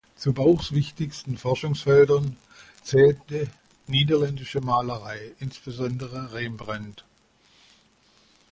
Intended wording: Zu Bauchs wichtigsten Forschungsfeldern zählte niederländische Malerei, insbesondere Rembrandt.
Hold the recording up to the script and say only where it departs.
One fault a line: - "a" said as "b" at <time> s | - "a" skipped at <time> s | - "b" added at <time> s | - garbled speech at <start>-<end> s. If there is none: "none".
none